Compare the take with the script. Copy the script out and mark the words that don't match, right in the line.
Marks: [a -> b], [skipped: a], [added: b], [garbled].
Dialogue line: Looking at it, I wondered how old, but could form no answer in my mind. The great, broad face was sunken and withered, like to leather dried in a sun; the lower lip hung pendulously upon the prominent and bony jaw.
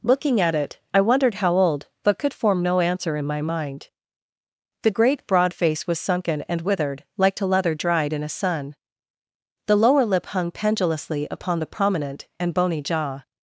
Looking at it, I wondered how old, but could form no answer in my mind. The great, broad face was sunken and withered, like to leather dried in a sun; the lower lip hung pendulously upon the prominent and bony jaw.